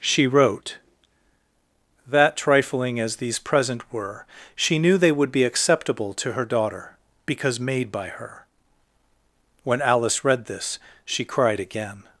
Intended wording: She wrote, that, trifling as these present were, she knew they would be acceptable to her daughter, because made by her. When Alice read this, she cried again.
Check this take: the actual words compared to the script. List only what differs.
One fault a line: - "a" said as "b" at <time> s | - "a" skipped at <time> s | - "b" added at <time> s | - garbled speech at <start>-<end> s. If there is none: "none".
none